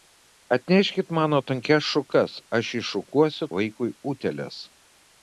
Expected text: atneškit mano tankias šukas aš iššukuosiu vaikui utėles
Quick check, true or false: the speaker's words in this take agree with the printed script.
true